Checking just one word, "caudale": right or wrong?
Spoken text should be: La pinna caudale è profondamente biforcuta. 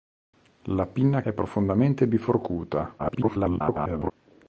wrong